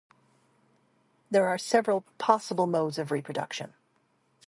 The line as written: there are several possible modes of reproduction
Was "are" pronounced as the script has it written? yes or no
yes